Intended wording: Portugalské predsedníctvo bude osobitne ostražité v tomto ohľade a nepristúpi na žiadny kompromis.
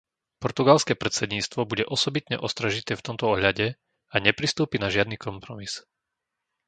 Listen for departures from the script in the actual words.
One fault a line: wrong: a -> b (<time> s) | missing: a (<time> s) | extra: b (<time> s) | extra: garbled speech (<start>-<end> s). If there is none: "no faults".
no faults